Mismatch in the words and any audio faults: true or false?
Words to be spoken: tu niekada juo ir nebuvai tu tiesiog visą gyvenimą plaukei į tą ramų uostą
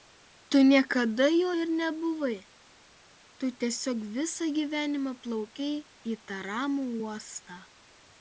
false